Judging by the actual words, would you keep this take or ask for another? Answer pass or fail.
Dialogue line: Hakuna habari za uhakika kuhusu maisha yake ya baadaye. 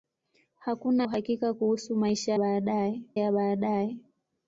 fail